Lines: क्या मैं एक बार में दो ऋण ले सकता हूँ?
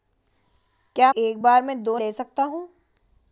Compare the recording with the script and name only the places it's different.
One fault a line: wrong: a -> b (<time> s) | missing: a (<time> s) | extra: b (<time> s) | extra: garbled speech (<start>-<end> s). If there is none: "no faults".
missing: मैं (1.1 s)
missing: ऋण (2.0 s)